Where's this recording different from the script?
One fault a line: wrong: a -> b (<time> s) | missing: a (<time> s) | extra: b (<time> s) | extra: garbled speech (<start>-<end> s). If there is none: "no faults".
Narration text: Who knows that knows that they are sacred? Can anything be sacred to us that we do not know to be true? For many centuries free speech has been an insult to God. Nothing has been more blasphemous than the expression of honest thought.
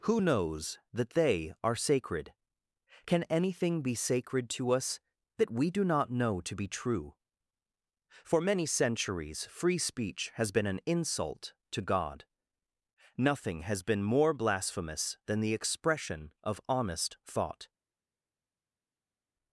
missing: knows that (1.1 s)